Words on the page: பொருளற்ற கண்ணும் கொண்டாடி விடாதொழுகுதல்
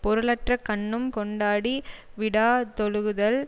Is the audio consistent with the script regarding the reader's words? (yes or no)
yes